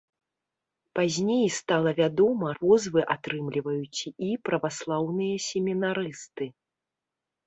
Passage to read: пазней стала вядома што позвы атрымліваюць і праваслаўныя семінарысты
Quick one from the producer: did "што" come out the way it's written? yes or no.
no